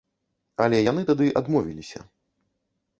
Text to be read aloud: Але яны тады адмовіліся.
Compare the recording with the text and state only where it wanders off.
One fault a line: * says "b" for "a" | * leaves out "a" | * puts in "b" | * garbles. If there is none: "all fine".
all fine